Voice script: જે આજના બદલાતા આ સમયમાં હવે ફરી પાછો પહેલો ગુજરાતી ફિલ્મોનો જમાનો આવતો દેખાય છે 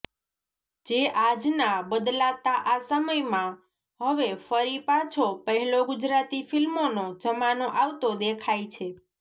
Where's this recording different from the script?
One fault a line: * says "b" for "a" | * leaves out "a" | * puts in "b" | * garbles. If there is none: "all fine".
all fine